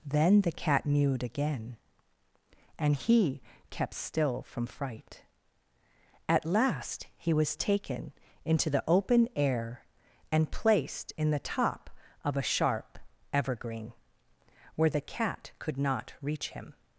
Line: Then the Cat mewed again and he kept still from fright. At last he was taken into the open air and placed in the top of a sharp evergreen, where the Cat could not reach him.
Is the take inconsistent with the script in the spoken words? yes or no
no